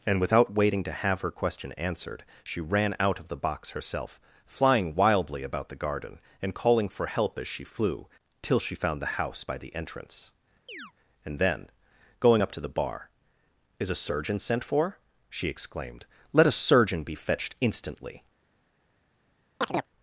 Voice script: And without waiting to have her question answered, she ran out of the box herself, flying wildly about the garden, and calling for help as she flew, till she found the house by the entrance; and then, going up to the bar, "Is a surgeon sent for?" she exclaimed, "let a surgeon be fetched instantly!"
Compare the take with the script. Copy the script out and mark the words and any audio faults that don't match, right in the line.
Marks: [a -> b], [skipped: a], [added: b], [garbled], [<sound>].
And without waiting to have her question answered, she ran out of the box herself, flying wildly about the garden, and calling for help as she flew, till she found the house by the entrance; [chirp] and then, going up to the bar, "Is a surgeon sent for?" she exclaimed, "let a surgeon be fetched instantly!" [chirp]